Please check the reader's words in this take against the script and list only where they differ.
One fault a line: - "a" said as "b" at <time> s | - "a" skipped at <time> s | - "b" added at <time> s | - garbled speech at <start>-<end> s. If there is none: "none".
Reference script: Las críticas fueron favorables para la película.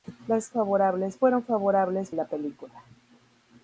- "críticas" said as "favorables" at 0.5 s
- "para" skipped at 2.1 s